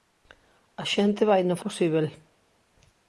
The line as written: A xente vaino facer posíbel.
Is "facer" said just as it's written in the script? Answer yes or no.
no